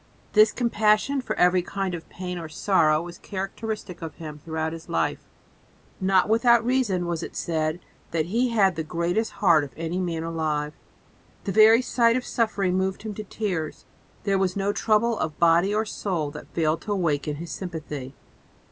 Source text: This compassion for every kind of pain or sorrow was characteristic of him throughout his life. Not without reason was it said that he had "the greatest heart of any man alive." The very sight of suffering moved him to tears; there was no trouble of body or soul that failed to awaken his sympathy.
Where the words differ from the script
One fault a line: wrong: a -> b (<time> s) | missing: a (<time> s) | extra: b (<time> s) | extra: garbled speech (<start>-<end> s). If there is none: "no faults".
no faults